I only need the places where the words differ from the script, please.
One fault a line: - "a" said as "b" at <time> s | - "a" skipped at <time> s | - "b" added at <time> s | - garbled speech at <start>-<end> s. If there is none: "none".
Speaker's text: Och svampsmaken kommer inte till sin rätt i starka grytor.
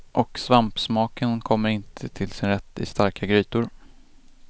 none